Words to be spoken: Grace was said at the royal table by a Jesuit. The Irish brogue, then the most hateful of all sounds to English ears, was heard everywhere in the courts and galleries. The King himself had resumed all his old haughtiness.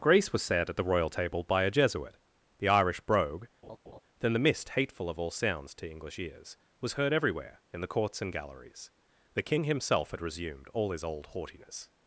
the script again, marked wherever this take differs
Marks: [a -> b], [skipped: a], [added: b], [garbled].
Grace was said at the royal table by a Jesuit. The Irish brogue, then the [most -> mist] hateful of all sounds to English ears, was heard everywhere in the courts and galleries. The King himself had resumed all his old haughtiness.